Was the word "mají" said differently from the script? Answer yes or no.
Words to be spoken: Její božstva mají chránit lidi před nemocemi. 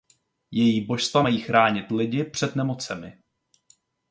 no